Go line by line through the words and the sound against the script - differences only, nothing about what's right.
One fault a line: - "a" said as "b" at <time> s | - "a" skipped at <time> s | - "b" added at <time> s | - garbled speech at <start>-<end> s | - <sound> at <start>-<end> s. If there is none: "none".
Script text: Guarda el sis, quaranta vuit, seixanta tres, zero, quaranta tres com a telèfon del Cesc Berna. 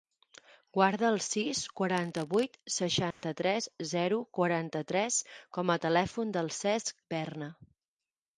- dropout at 3.1-3.2 s